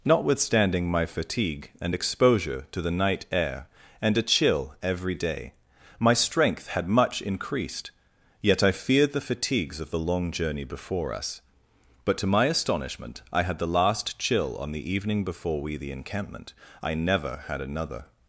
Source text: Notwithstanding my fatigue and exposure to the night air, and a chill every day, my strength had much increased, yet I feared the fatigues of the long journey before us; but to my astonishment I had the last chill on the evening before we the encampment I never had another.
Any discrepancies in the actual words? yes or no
no